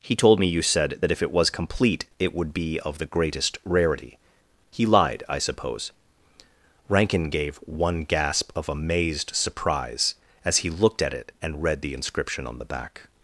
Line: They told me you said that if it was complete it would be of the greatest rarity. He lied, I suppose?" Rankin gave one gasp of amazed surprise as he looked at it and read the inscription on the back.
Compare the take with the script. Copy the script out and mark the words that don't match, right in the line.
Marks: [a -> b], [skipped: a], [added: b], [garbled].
[They -> He] told me you said that if it was complete it would be of the greatest rarity. He lied, I suppose?" Rankin gave one gasp of amazed surprise as he looked at it and read the inscription on the back.